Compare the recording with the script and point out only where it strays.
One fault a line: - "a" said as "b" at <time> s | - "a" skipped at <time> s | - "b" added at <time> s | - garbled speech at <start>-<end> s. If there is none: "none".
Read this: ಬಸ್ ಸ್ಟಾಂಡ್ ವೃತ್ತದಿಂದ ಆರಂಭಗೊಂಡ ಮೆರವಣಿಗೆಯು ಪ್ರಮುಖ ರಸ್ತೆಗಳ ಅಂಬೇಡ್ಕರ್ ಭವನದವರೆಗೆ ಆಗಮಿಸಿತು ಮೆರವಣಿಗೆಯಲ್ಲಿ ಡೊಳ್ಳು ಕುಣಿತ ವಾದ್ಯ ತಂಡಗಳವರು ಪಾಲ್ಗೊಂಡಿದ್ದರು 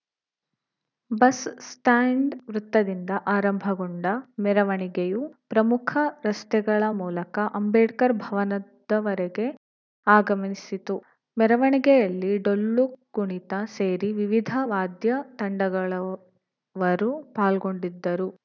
- "ಮೂಲಕ" added at 7.0 s
- "ಸೇರಿ ವಿವಿಧ" added at 13.7 s